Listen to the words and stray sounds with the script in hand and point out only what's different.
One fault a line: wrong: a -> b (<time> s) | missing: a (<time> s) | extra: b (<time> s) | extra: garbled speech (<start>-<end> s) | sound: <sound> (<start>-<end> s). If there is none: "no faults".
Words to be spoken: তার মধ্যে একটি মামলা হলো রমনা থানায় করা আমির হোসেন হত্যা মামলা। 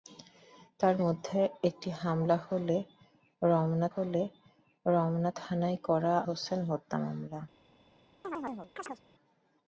extra: হলো রমনা (3.9 s)
missing: আমির (6.1 s)
sound: chirp (8.2-9.0 s)